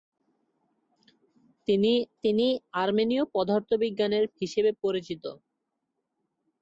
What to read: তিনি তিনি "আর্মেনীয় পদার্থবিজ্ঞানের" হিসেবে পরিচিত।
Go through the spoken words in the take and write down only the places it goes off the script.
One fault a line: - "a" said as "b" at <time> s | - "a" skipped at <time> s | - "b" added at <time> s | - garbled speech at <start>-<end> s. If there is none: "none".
none